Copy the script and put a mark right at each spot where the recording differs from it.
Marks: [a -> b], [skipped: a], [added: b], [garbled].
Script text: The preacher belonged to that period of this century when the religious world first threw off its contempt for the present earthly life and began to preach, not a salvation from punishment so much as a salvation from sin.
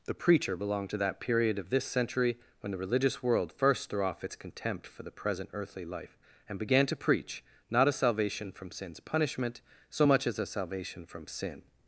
The preacher belonged to that period of this century when the religious world first threw off its contempt for the present earthly life and began to preach, not a salvation from [added: sin's] punishment so much as a salvation from sin.